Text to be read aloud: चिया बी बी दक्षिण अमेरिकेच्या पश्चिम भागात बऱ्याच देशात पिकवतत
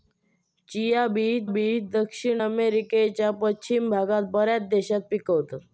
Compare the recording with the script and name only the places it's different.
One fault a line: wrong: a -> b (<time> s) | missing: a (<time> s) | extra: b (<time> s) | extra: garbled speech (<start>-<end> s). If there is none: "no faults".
no faults